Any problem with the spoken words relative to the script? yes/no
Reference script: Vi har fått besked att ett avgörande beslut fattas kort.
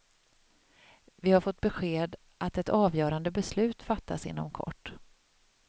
yes